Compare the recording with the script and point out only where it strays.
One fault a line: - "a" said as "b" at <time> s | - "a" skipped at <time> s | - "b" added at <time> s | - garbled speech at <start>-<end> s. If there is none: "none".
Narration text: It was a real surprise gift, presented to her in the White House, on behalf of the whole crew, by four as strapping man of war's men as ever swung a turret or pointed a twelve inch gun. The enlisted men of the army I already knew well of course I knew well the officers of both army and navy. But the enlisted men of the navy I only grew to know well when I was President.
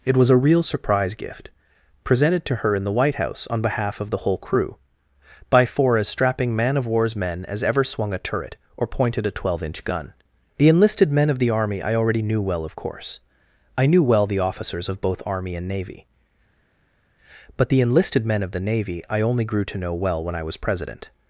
none